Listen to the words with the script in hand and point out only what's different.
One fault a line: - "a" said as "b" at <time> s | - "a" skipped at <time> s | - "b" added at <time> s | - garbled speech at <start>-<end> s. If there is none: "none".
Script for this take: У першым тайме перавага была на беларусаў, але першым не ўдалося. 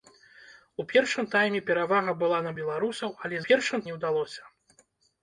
none